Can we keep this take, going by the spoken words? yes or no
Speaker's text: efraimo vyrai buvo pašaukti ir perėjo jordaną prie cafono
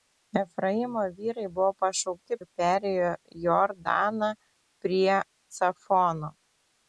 yes